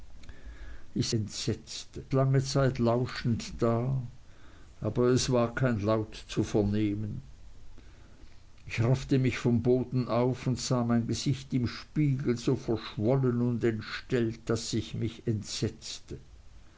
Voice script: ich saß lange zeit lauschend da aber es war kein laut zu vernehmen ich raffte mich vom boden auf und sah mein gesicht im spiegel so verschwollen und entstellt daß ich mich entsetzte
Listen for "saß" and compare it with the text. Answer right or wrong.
wrong